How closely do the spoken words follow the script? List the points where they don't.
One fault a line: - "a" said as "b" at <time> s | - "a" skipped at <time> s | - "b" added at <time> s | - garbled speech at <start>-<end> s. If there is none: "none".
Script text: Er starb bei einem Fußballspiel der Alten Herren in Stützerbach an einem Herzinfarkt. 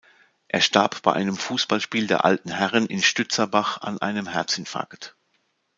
none